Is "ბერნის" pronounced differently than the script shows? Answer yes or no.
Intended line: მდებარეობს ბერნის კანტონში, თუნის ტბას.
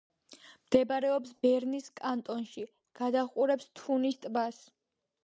no